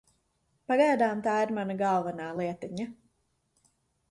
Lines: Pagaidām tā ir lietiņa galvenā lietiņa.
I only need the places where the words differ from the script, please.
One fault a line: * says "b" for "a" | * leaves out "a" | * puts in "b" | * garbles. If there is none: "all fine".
* says "mana" for "lietiņa"